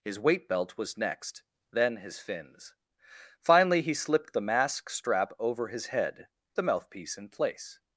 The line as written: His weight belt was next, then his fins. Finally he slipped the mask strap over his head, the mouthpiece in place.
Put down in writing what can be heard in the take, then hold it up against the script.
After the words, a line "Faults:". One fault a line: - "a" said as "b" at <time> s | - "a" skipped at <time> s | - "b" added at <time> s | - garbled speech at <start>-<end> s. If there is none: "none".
His weight belt was next, then his fins. Finally he slipped the mask strap over his head, the mouthpiece in place.
Faults:
none